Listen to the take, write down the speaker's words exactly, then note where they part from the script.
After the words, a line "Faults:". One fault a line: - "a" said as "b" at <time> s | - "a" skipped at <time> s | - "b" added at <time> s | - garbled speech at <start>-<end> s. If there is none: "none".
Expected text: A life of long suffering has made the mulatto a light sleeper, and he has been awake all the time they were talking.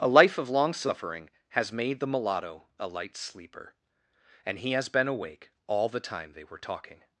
A life of long suffering has made the mulatto a light sleeper, and he has been awake all the time they were talking.
Faults:
none